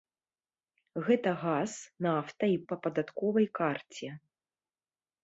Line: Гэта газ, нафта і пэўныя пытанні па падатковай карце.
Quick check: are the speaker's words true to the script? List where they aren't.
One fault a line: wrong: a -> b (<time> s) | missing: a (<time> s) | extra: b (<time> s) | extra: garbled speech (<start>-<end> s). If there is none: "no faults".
missing: пэўныя пытанні (2.6 s)